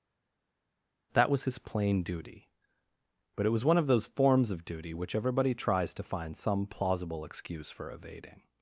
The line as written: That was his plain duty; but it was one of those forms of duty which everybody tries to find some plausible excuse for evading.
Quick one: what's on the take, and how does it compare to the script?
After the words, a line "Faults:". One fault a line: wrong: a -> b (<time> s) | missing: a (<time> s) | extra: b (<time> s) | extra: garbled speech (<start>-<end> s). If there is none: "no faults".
That was his plain duty; but it was one of those forms of duty which everybody tries to find some plausible excuse for evading.
Faults:
no faults